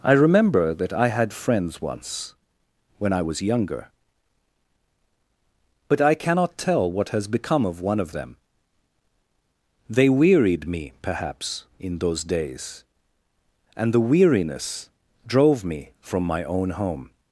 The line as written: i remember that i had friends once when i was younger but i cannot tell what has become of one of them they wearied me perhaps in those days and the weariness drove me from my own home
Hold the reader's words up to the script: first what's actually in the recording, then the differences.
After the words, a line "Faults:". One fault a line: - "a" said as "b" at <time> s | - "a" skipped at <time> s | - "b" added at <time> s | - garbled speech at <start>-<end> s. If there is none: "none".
i remember that i had friends once when i was younger but i cannot tell what has become of one of them they wearied me perhaps in those days and the weariness drove me from my own home
Faults:
none